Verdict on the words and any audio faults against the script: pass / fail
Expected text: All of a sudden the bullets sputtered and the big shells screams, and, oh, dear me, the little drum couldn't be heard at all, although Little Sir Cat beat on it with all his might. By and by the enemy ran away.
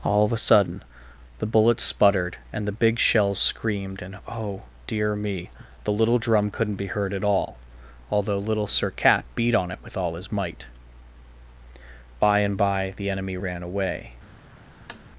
fail